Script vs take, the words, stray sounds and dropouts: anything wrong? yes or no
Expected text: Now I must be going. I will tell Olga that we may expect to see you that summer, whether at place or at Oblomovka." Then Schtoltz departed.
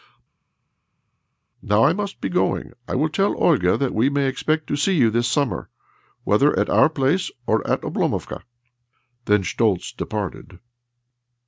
yes